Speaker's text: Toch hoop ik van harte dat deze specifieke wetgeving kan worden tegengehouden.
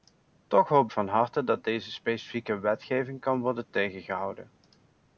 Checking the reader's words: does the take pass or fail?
fail